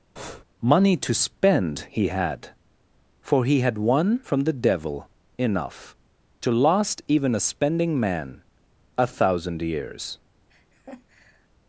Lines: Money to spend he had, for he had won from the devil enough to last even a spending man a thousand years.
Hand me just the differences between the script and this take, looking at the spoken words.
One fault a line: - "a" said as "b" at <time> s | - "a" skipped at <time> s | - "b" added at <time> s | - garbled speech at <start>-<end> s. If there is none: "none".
none